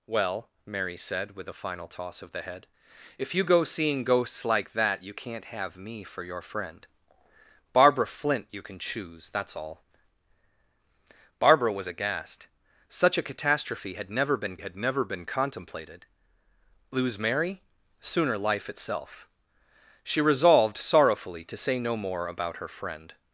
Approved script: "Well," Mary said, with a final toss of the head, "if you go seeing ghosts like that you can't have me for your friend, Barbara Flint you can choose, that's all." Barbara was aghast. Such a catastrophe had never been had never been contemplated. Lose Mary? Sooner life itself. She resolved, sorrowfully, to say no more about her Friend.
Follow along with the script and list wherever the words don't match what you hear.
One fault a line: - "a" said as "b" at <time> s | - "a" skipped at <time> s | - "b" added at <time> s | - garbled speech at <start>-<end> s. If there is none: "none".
none